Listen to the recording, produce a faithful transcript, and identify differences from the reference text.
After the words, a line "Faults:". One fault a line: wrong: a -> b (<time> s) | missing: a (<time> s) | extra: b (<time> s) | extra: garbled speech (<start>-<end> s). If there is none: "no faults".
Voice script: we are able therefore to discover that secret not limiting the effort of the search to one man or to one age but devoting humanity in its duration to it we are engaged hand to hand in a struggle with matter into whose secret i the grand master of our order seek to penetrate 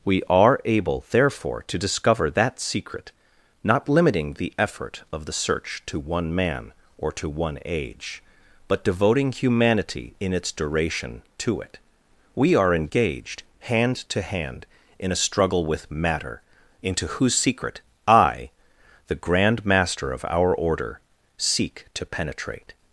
we are able therefore to discover that secret not limiting the effort of the search to one man or to one age but devoting humanity in its duration to it we are engaged hand to hand in a struggle with matter into whose secret i the grand master of our order seek to penetrate
Faults:
no faults